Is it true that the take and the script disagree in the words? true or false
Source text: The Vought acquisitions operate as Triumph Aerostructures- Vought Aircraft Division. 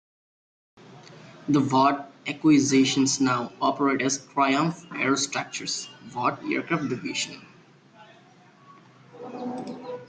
true